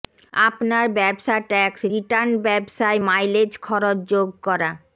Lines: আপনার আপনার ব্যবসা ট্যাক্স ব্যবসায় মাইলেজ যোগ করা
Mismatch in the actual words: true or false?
true